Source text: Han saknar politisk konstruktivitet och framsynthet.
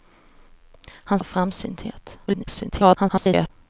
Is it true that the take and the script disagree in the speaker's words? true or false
true